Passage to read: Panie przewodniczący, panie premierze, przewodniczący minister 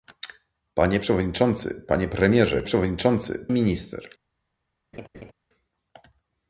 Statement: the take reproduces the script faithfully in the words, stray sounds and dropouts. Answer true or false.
false